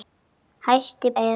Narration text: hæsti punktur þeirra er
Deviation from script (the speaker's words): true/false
true